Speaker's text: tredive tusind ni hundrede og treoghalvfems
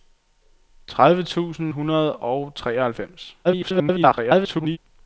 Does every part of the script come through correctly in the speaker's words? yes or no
no